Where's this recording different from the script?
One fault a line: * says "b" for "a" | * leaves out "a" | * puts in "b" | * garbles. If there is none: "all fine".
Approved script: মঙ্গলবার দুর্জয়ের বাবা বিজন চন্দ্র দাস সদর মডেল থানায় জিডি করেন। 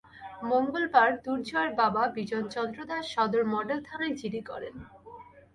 all fine